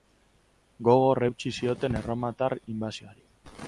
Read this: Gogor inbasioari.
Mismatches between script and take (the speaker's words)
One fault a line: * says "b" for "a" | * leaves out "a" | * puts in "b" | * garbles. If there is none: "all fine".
* puts in "eutsi zioten erromatar"